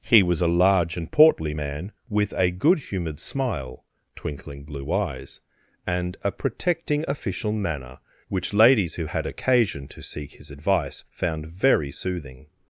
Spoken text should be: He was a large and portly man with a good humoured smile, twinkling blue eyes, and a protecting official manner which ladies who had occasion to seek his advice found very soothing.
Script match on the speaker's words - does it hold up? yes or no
yes